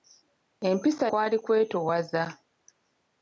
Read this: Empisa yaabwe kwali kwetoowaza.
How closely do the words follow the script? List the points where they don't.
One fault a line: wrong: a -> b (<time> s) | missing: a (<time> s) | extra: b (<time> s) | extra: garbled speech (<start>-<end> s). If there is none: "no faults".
missing: yaabwe (1.1 s)